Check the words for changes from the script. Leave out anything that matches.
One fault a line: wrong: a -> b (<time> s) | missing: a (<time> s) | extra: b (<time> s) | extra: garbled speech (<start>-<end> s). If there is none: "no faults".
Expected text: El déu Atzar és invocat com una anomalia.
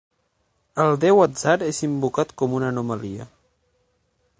no faults